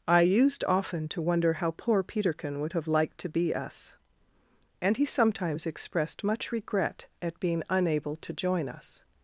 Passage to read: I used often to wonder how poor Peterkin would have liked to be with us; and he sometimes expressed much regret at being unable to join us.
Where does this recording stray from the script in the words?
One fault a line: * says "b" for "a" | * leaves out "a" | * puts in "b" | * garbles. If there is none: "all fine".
* leaves out "with"